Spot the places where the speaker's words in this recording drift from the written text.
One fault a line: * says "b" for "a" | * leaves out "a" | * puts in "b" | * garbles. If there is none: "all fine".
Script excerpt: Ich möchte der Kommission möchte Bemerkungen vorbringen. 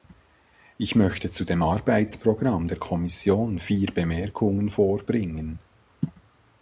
* puts in "zu dem Arbeitsprogramm"
* says "vier" for "möchte"